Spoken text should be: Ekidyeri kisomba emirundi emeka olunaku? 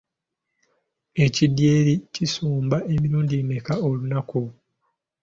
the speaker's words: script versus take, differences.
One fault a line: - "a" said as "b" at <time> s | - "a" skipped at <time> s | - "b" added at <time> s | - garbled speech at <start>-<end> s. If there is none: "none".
none